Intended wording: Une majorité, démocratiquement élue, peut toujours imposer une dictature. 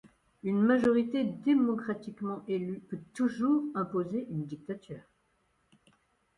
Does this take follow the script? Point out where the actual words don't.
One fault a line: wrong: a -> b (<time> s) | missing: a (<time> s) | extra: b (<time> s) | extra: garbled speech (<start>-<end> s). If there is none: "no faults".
no faults